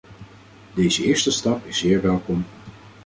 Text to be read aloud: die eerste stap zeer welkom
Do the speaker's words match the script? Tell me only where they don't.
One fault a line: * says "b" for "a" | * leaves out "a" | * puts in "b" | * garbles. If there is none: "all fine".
* says "deze" for "die"
* puts in "is"